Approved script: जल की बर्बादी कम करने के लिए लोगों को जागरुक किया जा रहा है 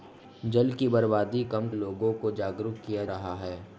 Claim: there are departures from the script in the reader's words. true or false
true